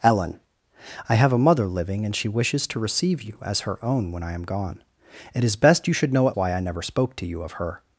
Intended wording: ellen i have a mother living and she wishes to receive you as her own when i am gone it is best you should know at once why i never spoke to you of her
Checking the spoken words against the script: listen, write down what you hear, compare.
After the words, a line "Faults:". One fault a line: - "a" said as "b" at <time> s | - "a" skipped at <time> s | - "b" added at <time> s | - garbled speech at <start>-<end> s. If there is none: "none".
ellen i have a mother living and she wishes to receive you as her own when i am gone it is best you should know at why i never spoke to you of her
Faults:
- "once" skipped at 6.4 s